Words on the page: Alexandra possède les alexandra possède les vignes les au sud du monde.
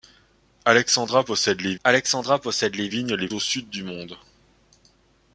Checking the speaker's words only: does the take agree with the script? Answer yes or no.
yes